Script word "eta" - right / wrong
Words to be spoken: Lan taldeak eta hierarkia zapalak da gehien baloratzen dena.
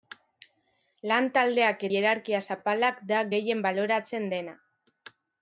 wrong